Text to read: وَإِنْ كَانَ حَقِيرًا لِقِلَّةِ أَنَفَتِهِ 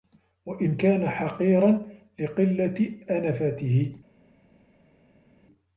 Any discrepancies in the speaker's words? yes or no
no